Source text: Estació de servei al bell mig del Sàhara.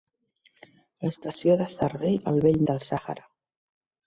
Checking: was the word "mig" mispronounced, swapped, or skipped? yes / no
yes